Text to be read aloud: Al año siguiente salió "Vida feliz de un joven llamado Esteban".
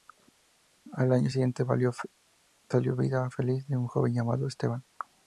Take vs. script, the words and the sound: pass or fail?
pass